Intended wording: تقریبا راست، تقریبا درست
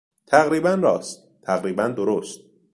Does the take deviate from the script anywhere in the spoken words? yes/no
no